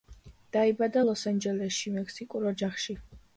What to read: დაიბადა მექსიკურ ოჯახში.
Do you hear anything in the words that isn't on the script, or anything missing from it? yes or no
yes